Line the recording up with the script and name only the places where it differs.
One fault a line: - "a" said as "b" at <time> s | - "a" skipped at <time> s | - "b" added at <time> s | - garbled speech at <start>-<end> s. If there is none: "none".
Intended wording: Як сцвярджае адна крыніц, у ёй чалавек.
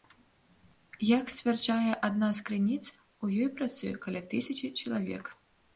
- "з" added at 2.4 s
- "працуе каля тысячы" added at 3.6 s